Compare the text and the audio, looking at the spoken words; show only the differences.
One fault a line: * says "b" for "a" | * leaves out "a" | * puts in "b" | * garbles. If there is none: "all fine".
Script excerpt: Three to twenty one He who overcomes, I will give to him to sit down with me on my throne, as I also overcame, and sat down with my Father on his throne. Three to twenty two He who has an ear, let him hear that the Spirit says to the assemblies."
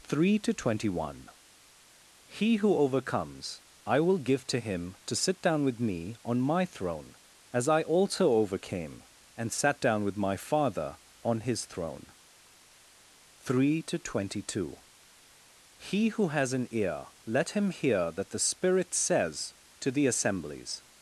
all fine